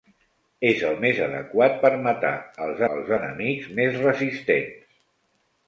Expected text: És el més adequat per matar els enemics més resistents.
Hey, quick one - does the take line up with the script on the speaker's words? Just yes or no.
no